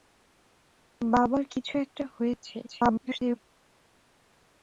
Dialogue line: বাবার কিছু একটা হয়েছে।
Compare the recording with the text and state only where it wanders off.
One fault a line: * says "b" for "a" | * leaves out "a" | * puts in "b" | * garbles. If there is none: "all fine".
* garbles